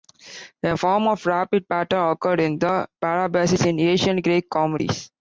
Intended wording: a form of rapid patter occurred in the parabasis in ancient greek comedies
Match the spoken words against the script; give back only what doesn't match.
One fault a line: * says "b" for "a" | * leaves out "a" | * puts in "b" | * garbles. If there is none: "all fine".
all fine